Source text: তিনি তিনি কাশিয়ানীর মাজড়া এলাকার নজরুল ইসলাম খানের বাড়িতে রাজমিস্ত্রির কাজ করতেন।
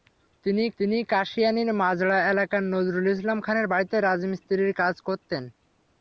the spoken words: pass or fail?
pass